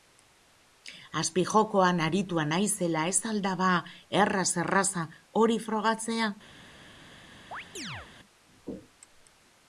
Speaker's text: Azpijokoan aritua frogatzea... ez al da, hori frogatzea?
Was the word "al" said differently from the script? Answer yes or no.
no